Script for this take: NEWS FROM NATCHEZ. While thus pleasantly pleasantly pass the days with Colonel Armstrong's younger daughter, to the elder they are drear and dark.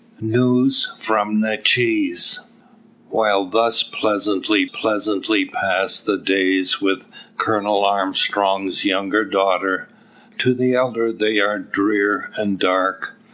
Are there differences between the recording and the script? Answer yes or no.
no